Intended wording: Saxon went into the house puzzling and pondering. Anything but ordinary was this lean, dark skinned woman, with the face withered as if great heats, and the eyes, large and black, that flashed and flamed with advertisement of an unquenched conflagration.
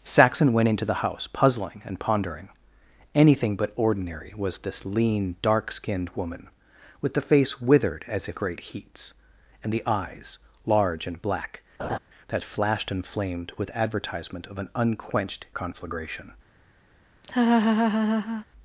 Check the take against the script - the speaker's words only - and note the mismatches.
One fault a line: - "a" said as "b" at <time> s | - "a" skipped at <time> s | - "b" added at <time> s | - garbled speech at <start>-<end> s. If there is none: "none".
none